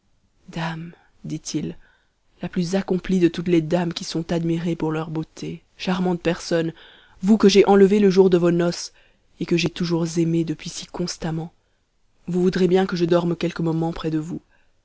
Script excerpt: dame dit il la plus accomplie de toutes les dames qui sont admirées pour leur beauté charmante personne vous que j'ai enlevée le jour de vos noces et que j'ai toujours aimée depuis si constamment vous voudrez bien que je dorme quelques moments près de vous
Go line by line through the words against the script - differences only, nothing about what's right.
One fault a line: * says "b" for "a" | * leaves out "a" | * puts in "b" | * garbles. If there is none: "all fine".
all fine